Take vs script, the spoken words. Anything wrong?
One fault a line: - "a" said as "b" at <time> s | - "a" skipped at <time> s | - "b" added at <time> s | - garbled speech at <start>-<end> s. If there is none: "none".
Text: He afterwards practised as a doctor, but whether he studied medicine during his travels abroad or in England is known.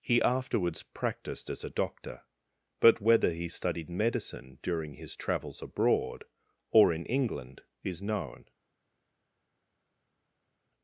none